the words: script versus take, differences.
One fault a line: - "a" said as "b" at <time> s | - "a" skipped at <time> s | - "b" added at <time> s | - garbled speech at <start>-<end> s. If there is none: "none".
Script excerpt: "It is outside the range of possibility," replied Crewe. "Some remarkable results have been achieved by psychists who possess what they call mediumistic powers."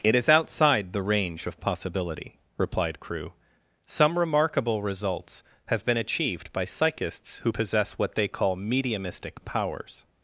none